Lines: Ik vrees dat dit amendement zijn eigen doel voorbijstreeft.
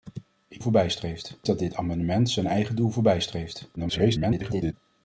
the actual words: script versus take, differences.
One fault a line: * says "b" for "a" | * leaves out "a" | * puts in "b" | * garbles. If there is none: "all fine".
* says "voorbijstreeft" for "vrees"
* garbles